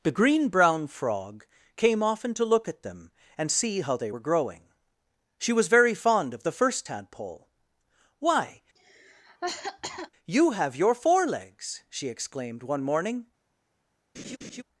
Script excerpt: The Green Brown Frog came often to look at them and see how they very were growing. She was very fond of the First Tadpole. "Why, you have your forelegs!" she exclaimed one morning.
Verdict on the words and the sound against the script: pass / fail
fail